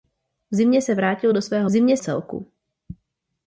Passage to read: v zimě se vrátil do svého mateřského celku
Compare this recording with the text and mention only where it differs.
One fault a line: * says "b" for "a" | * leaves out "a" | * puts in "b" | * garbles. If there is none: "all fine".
* says "zimě" for "mateřského"